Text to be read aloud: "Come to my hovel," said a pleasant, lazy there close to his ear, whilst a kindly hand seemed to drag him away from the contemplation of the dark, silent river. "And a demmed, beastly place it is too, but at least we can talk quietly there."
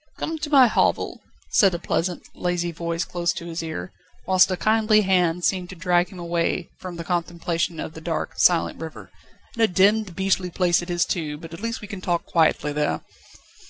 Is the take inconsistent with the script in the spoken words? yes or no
yes